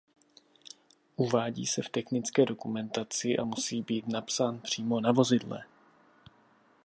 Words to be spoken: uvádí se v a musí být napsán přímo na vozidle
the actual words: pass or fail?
fail